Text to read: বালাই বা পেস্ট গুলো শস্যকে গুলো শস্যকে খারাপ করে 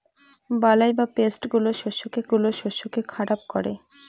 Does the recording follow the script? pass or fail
pass